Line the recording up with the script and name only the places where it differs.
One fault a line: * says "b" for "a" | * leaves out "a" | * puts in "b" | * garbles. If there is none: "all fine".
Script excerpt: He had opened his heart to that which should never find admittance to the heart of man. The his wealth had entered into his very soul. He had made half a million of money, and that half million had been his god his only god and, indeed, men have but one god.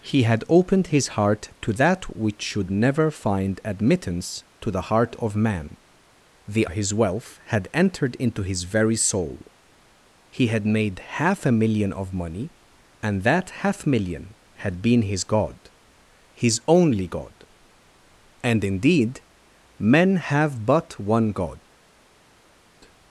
all fine